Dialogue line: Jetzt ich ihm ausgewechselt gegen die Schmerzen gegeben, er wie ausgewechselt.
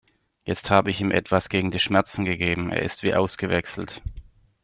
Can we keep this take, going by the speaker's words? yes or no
no